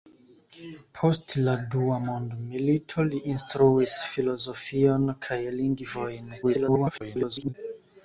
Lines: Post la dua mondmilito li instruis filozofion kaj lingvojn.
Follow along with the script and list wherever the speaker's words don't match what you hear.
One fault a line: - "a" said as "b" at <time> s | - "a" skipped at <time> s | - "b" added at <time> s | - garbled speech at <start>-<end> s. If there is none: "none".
- garbled speech at 6.4-7.5 s